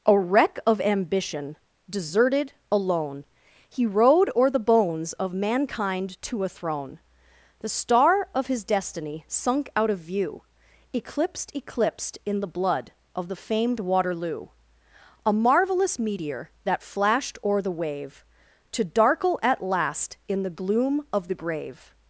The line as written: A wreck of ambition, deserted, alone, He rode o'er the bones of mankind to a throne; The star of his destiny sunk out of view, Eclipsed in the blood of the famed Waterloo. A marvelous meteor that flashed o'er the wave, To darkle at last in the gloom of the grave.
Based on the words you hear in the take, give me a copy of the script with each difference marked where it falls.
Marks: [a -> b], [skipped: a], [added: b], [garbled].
A wreck of ambition, deserted, alone, He rode o'er the bones of mankind to a throne; The star of his destiny sunk out of view, Eclipsed [added: Eclipsed] in the blood of the famed Waterloo. A marvelous meteor that flashed o'er the wave, To darkle at last in the gloom of the grave.